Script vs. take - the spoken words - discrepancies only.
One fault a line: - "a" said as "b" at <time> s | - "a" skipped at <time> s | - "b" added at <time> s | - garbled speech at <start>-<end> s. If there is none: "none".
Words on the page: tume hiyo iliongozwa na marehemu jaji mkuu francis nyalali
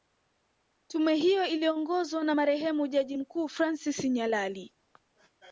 none